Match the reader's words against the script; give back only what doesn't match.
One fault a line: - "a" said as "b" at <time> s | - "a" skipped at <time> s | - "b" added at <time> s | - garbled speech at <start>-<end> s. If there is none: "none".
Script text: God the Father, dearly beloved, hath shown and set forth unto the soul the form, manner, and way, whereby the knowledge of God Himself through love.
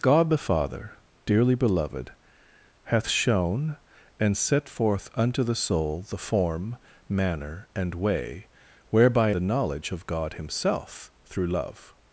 none